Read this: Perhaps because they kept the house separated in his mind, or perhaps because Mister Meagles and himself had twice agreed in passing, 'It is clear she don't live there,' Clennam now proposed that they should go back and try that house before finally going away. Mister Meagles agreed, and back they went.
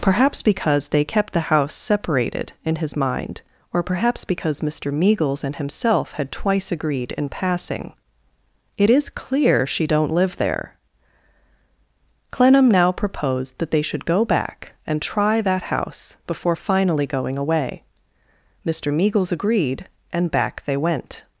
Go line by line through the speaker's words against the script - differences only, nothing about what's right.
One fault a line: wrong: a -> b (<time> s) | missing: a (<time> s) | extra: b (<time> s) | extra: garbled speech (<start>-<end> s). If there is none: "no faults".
no faults